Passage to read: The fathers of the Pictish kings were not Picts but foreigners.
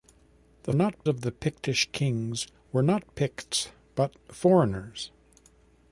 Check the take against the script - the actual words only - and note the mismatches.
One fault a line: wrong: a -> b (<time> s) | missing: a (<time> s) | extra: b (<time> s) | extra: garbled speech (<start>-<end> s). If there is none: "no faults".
wrong: fathers -> not (0.7 s)